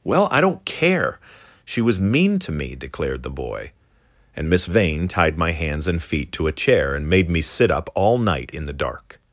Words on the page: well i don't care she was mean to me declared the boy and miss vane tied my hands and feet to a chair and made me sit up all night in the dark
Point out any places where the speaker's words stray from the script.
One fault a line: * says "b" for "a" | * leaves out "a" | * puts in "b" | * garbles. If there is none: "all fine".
all fine